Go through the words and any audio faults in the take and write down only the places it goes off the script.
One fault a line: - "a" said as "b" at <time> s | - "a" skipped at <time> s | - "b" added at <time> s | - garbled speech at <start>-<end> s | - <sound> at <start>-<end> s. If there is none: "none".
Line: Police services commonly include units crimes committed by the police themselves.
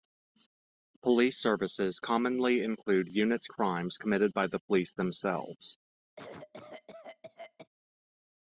- cough at 6.2-7.7 s